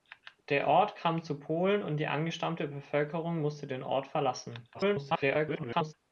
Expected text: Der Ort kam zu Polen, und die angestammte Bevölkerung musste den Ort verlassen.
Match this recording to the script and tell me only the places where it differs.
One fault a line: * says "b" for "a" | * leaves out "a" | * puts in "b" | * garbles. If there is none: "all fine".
* garbles